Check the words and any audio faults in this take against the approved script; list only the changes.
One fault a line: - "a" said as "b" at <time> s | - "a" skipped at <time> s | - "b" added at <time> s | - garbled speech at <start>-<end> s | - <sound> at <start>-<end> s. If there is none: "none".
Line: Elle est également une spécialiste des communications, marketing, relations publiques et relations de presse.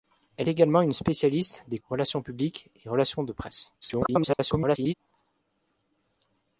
- "est" skipped at 0.5 s
- "communications marketing" skipped at 1.8 s
- garbled speech at 3.8-4.9 s